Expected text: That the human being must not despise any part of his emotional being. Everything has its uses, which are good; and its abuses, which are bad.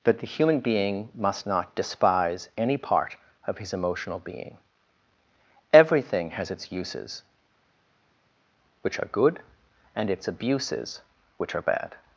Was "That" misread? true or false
false